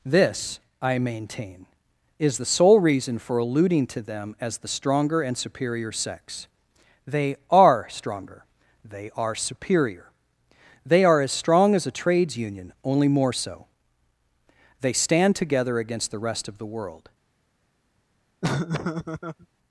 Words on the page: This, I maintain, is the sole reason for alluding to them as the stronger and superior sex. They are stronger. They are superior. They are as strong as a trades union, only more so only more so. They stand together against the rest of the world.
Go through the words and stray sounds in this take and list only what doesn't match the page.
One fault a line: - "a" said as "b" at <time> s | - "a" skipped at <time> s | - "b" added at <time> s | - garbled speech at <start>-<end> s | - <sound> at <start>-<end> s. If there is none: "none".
- "only more so" skipped at 13.6 s
- laugh at 18.4-19.5 s